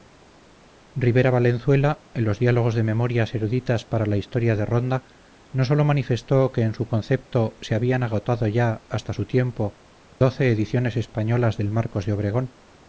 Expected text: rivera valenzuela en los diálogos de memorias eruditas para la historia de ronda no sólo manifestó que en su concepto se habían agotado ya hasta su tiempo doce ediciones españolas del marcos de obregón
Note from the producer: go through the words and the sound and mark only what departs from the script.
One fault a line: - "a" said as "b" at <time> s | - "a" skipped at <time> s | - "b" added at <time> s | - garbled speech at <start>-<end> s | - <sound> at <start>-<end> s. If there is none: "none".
- dropout at 10.1-10.2 s